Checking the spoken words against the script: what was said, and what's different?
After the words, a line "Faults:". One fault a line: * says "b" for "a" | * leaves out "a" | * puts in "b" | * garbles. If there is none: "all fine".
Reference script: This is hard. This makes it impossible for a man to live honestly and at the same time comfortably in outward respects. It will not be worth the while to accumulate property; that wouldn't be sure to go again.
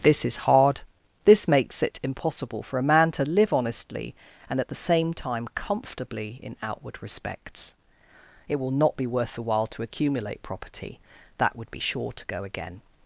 This is hard. This makes it impossible for a man to live honestly and at the same time comfortably in outward respects. It will not be worth the while to accumulate property; that would be sure to go again.
Faults:
* says "would" for "wouldn't"